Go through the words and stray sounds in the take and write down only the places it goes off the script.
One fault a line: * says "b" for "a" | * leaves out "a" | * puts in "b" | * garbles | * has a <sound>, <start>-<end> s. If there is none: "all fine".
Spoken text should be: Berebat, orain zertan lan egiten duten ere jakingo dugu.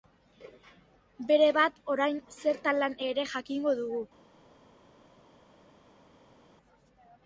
* leaves out "egiten duten"